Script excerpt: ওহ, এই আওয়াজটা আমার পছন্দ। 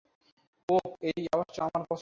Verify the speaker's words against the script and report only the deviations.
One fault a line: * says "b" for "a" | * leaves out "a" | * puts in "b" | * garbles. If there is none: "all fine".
all fine